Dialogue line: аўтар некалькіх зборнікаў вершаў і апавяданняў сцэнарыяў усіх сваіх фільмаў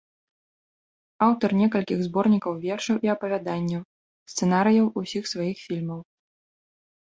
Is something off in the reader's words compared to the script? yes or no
no